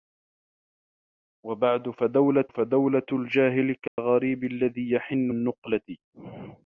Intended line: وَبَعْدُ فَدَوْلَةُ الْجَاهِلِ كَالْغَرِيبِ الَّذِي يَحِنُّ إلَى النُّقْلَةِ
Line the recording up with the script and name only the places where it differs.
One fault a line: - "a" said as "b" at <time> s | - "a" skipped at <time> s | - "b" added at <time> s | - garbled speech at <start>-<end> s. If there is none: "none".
- "فَدَوْلَةُ" added at 2.5 s
- "إلَى" skipped at 5.3 s